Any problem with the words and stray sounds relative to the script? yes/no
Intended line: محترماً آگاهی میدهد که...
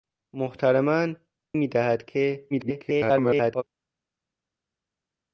yes